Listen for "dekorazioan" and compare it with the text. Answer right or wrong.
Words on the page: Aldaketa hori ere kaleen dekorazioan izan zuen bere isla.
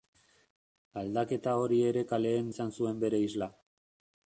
wrong